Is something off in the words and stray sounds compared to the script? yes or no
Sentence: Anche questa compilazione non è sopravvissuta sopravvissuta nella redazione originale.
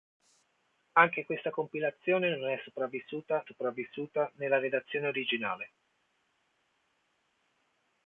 no